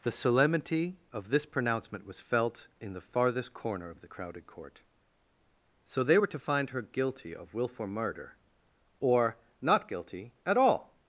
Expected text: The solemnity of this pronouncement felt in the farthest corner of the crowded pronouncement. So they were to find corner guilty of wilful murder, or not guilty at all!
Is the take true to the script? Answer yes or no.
no